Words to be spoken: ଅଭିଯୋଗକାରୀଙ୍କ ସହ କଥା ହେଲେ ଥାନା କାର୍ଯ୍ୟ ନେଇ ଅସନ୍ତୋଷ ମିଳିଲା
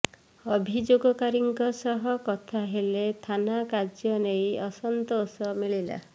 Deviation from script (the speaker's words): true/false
false